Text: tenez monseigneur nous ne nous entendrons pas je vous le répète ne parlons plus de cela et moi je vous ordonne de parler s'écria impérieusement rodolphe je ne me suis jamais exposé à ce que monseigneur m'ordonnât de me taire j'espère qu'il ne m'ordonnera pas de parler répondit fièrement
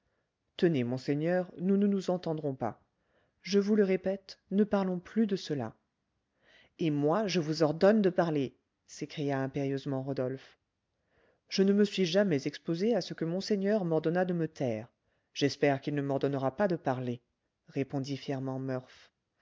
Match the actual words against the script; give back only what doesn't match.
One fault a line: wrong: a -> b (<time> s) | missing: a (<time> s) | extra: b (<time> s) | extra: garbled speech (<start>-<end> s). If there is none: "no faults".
no faults